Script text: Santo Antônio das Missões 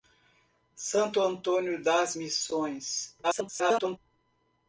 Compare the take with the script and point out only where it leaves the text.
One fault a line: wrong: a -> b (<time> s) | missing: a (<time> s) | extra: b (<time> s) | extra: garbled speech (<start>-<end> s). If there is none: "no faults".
extra: garbled speech (3.2-4.0 s)